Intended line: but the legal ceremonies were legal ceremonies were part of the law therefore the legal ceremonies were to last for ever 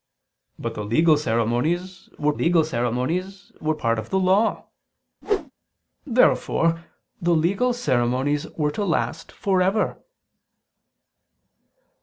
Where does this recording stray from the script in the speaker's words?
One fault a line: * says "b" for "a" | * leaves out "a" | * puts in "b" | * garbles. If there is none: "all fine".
all fine